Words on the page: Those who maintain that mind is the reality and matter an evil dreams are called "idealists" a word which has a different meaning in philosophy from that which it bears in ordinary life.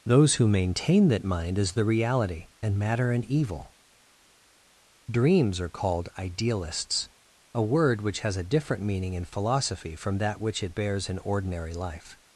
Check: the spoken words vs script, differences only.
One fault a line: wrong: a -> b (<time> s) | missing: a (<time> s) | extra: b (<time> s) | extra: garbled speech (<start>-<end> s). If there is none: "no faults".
no faults